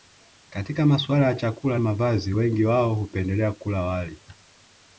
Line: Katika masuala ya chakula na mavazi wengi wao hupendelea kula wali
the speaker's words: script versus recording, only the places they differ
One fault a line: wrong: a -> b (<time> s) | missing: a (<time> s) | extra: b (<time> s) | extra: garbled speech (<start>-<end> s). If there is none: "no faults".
missing: na (1.8 s)